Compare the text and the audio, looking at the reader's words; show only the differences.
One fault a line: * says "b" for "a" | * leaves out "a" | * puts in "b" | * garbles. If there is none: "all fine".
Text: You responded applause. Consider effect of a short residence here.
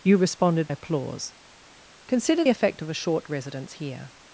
all fine